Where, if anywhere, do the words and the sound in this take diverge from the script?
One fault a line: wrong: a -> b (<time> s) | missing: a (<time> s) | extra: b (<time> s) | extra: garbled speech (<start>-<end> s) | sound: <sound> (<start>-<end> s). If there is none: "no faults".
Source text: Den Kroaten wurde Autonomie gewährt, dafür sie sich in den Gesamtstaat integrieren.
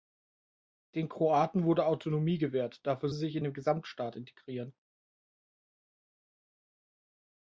no faults